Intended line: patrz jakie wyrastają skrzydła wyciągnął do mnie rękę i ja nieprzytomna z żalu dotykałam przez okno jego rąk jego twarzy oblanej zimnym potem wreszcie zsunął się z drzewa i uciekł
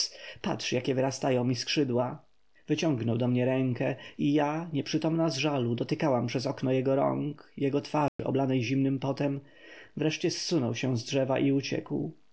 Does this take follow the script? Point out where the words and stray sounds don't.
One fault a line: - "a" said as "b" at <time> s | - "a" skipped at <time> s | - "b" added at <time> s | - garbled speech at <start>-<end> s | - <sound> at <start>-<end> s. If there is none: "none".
- "mi" added at 1.4 s
- dropout at 8.1-8.2 s